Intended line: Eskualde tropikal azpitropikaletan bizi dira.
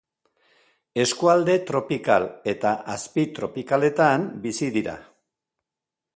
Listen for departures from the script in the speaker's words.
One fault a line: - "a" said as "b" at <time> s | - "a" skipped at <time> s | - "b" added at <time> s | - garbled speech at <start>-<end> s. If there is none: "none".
- "eta" added at 2.5 s